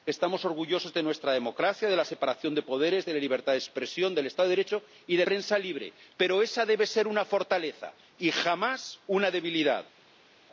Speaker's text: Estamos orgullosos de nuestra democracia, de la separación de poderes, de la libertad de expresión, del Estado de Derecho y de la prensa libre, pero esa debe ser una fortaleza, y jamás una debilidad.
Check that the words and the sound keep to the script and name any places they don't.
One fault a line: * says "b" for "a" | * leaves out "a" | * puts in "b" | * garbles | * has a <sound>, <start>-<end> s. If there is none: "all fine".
* leaves out "la"